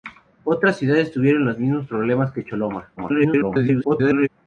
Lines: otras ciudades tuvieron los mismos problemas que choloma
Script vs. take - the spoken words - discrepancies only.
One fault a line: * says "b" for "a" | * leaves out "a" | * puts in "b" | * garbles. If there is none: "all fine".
* garbles